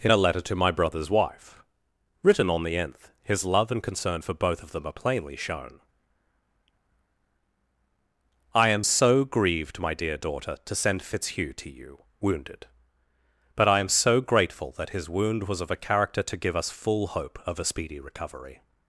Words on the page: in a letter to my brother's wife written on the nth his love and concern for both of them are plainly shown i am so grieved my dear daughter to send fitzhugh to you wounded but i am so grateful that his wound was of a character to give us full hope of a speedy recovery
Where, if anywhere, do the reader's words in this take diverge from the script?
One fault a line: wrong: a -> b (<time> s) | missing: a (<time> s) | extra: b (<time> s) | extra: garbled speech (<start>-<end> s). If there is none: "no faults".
no faults